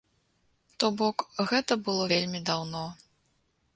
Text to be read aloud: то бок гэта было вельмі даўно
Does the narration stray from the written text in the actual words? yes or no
no